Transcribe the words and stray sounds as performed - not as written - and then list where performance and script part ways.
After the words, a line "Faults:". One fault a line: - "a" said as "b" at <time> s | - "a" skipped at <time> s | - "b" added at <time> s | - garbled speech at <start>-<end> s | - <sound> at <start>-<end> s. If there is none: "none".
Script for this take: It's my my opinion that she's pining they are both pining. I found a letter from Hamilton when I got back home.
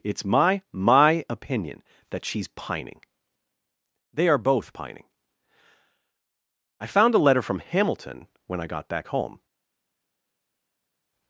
It's my my opinion that she's pining they are both pining. I found a letter from Hamilton when I got back home.
Faults:
none